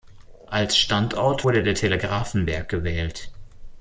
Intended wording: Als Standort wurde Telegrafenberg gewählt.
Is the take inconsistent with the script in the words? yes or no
yes